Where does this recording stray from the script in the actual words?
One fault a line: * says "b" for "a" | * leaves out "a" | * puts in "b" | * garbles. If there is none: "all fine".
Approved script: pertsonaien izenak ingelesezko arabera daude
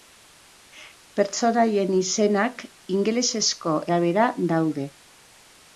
all fine